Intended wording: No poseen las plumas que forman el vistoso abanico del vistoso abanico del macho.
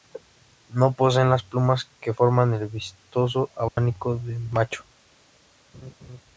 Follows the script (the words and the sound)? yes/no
no